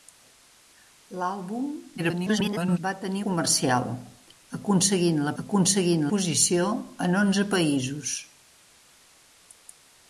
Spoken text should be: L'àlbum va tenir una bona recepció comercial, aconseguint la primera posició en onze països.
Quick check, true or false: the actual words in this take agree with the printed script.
false